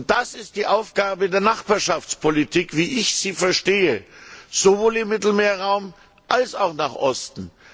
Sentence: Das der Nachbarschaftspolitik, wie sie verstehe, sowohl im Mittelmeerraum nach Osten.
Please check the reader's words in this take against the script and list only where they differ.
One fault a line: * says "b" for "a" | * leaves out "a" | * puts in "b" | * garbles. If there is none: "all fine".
* puts in "ist die Aufgabe"
* puts in "ich"
* puts in "als auch"